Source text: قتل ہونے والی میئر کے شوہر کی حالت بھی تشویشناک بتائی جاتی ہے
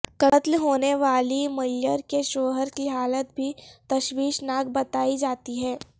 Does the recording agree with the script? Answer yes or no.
yes